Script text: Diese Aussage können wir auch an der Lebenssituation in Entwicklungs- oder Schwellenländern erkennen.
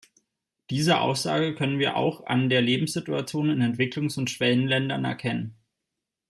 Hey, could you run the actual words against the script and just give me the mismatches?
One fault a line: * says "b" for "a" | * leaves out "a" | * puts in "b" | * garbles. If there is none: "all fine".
* says "und" for "oder"